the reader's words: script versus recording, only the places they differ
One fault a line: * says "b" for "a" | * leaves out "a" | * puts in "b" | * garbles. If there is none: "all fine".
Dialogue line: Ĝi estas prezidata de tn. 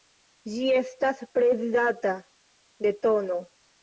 all fine